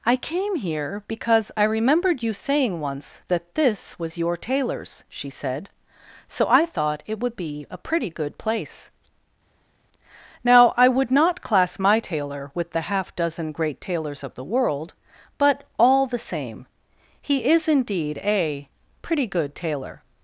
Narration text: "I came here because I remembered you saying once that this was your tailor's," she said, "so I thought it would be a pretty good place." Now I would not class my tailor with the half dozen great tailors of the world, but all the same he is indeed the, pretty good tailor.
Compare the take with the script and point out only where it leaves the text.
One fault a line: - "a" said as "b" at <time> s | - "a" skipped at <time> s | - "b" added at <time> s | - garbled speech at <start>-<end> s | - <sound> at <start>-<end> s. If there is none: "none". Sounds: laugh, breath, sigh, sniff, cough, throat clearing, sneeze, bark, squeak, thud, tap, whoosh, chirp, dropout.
- "the" said as "a" at 18.2 s